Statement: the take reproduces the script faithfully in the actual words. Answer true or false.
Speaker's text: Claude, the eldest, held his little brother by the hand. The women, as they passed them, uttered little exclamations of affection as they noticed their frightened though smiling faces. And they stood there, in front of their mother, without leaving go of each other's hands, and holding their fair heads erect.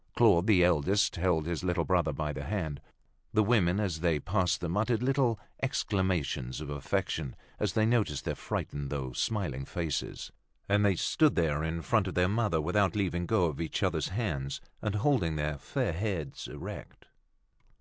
true